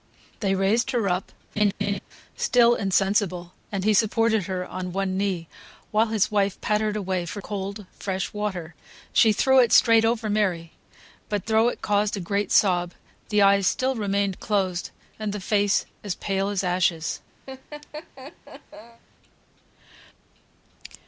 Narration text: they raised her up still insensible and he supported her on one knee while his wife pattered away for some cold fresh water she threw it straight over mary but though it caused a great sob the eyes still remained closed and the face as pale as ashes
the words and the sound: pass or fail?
fail